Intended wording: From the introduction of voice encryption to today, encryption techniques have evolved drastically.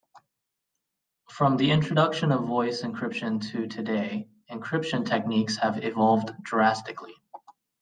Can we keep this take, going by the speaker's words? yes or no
yes